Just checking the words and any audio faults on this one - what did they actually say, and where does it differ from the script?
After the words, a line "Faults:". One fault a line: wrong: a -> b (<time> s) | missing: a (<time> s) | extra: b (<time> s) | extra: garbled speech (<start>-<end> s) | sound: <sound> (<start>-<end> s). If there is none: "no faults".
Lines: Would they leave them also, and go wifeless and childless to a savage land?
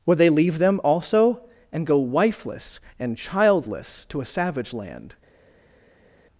Would they leave them also, and go wifeless and childless to a savage land?
Faults:
no faults